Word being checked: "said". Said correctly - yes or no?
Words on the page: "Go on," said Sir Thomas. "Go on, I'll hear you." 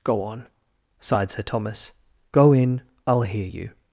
no